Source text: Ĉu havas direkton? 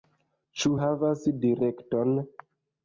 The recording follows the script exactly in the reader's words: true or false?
true